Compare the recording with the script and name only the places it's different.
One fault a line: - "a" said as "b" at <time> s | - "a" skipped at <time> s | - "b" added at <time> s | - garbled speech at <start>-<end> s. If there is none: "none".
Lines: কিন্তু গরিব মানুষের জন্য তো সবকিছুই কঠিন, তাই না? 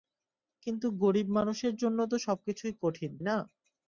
- "তাই" skipped at 3.1 s